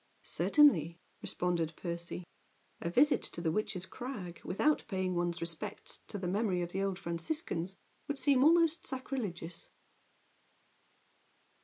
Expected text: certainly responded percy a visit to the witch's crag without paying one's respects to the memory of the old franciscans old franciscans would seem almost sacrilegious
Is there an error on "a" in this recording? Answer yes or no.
no